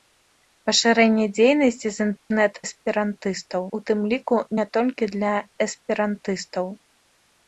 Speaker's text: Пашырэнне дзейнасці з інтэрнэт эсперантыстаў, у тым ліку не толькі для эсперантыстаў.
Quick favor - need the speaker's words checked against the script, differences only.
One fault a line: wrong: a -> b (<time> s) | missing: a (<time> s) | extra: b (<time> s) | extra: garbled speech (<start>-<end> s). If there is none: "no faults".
no faults